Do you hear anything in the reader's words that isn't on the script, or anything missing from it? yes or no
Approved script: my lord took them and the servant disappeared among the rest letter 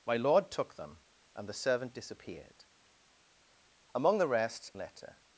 no